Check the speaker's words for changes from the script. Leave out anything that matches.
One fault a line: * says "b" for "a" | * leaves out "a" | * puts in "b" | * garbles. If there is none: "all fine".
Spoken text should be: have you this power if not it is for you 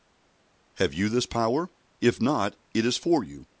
all fine